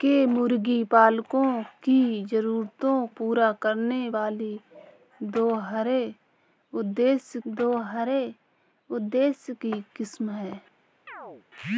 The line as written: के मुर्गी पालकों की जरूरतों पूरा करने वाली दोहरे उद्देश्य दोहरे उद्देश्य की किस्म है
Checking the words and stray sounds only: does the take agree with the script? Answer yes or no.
no